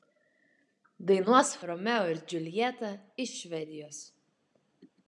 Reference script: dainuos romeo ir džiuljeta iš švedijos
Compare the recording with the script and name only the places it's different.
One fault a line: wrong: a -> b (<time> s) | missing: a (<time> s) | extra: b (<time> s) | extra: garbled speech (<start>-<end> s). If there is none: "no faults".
no faults